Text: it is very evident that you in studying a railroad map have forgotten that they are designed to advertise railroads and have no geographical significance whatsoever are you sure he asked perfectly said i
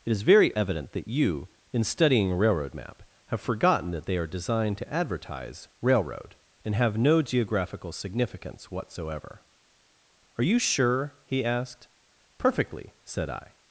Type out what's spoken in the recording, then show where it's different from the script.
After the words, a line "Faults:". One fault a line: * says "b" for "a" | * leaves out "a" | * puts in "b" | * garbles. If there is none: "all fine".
it is very evident that you in studying a railroad map have forgotten that they are designed to advertise railroad and have no geographical significance whatsoever are you sure he asked perfectly said i
Faults:
* says "railroad" for "railroads"